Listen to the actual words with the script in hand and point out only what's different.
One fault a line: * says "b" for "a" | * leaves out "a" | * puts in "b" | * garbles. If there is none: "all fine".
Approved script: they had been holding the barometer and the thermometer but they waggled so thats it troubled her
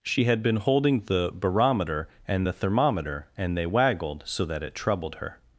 * says "she" for "they"
* says "and" for "but"
* says "that" for "thats"